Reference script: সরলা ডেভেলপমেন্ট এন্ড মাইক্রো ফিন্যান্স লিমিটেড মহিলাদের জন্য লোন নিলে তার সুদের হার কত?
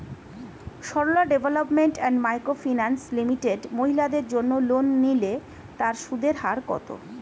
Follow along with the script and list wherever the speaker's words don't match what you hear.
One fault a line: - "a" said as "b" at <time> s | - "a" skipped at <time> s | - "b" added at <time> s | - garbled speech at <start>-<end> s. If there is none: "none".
none